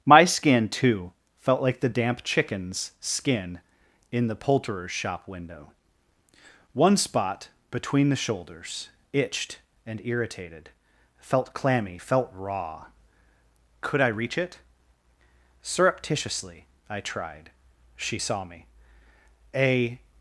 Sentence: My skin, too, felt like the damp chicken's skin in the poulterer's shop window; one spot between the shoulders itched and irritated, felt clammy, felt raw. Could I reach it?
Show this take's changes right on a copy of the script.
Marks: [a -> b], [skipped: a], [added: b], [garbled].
My skin, too, felt like the damp chicken's skin in the poulterer's shop window; one spot between the shoulders itched and irritated, felt clammy, felt raw. Could I reach it? [added: Surreptitiously I tried She saw me A]